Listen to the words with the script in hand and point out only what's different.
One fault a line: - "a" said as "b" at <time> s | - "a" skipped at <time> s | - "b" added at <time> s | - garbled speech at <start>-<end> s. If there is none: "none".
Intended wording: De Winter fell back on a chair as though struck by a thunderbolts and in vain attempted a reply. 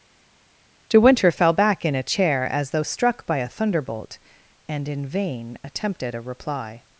- "on" said as "in" at 1.8 s
- "thunderbolts" said as "thunderbolt" at 3.5 s